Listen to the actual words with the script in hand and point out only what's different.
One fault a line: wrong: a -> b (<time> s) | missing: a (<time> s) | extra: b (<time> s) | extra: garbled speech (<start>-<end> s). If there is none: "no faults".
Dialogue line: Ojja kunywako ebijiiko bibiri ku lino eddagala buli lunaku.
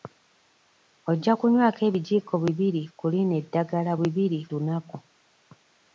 wrong: buli -> bibiri (4.0 s)